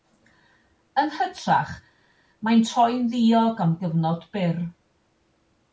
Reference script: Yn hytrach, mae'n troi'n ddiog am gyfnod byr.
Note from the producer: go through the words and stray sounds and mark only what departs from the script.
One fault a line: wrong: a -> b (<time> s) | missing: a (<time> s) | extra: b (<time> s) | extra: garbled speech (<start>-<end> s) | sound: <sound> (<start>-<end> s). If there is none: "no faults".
no faults